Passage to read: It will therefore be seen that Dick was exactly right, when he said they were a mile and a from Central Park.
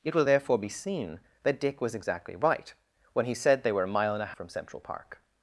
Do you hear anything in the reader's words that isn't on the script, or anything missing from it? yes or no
no